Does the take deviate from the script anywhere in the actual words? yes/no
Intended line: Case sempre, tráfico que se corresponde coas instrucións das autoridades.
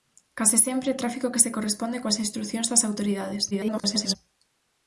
yes